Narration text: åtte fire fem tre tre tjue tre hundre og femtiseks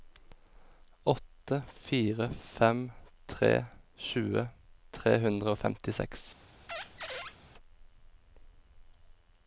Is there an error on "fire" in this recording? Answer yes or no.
no